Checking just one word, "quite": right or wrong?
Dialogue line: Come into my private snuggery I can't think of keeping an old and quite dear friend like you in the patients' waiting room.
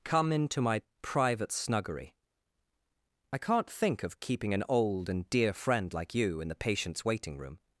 wrong